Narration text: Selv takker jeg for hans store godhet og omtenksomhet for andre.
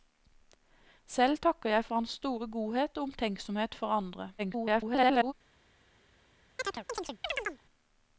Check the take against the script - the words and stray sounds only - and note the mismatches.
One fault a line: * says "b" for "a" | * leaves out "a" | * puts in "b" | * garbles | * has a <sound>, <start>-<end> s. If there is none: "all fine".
* garbles
* has a chirp, 6.6-7.6 s